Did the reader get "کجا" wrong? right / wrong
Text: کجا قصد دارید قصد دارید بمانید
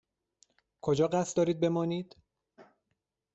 right